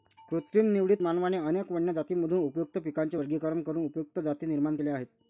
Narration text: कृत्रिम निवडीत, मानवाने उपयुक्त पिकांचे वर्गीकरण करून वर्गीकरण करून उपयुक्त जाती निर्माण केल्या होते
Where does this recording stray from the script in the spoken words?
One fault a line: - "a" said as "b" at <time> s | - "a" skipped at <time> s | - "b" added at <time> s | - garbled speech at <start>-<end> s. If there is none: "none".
- "अनेक वन्य जातींमधून" added at 1.5 s
- "वर्गीकरण करून" skipped at 3.8 s
- "होते" said as "आहेत" at 4.9 s